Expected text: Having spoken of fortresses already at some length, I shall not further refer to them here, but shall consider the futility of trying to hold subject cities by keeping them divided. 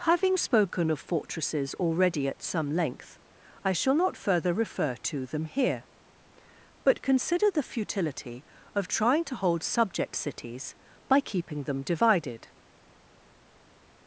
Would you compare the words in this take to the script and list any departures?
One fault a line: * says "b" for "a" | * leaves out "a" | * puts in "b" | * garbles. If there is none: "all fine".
* leaves out "shall"